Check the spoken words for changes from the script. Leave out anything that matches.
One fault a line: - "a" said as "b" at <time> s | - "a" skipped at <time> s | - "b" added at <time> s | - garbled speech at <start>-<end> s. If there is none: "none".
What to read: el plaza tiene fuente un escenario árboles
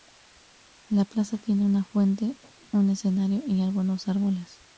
- "el" said as "la" at 0.9 s
- "una" added at 1.6 s
- "y algunos" added at 3.5 s